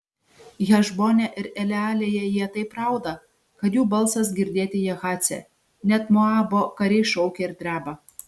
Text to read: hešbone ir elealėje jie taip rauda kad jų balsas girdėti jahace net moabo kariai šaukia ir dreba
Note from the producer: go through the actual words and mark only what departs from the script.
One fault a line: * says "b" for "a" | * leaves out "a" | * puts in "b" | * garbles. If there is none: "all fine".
all fine